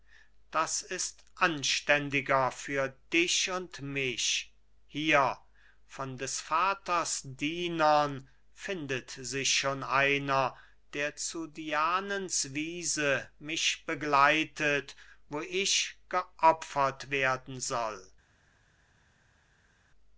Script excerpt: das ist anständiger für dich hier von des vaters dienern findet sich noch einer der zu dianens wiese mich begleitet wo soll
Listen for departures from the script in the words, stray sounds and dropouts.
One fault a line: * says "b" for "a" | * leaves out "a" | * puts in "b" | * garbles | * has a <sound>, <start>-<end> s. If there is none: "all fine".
* puts in "und mich"
* says "schon" for "noch"
* puts in "ich geopfert werden"